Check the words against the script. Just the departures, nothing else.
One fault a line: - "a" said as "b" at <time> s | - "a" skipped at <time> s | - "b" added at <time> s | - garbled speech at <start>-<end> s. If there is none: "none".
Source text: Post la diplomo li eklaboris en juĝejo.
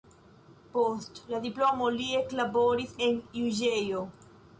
none